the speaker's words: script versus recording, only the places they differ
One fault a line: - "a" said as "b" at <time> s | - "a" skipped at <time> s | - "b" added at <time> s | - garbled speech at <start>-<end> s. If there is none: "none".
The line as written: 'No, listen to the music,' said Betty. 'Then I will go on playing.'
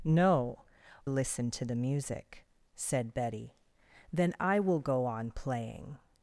none